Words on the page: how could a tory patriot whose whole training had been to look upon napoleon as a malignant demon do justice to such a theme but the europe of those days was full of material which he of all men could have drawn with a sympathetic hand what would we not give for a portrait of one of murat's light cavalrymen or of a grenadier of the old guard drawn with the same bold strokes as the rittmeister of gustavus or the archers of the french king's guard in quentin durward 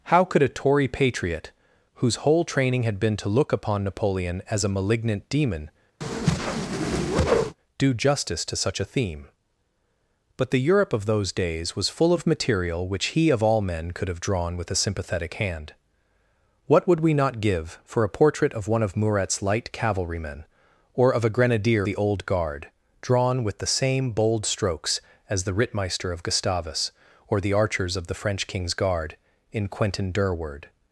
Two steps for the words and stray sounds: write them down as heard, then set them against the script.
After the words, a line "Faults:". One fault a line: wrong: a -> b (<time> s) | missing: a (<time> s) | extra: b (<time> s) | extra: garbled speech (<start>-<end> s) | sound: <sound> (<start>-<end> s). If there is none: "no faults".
how could a tory patriot whose whole training had been to look upon napoleon as a malignant demon do justice to such a theme but the europe of those days was full of material which he of all men could have drawn with a sympathetic hand what would we not give for a portrait of one of murat's light cavalrymen or of a grenadier the old guard drawn with the same bold strokes as the rittmeister of gustavus or the archers of the french king's guard in quentin durward
Faults:
sound: whoosh (6.0-7.6 s)
missing: of (21.9 s)